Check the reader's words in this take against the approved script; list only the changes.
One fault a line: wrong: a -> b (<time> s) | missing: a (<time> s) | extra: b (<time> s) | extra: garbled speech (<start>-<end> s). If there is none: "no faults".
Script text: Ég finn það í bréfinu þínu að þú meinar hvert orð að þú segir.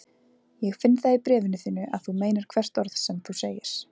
wrong: að -> sem (3.0 s)